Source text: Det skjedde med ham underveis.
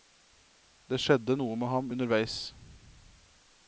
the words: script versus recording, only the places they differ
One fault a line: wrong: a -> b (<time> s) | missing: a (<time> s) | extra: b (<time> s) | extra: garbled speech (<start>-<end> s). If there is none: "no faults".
extra: noe (1.3 s)